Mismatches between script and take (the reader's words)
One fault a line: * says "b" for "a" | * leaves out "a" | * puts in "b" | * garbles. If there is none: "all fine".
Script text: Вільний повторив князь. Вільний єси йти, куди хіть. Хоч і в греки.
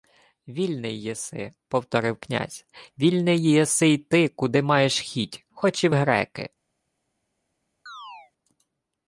* puts in "єси"
* puts in "маєш"